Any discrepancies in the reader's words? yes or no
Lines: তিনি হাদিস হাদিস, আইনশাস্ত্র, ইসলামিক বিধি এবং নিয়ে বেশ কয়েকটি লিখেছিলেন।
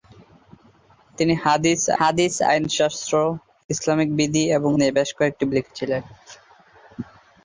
no